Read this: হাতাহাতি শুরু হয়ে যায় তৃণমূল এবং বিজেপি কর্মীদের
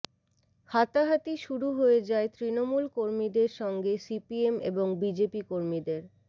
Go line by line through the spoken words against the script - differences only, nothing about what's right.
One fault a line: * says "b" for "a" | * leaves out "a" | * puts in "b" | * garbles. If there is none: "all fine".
* puts in "কর্মীদের সঙ্গে সিপিএম"